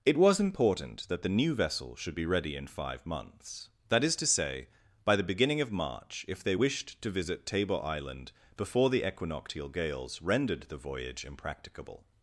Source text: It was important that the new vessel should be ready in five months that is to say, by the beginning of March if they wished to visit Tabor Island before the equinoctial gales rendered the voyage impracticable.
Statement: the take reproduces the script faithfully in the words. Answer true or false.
true